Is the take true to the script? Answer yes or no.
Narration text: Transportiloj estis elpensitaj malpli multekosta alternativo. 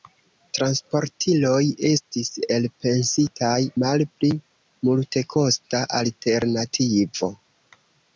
yes